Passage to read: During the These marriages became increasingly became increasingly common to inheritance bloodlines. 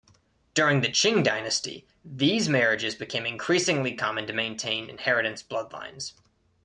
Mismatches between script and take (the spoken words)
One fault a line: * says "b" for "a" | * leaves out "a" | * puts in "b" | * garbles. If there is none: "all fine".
* puts in "Qing dynasty"
* leaves out "became increasingly"
* puts in "maintain"